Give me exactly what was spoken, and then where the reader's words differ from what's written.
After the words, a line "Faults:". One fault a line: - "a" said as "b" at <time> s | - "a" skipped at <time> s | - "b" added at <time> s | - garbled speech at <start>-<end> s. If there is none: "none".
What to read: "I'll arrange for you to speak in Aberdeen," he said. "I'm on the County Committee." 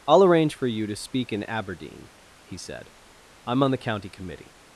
"I'll arrange for you to speak in Aberdeen," he said. "I'm on the County Committee."
Faults:
none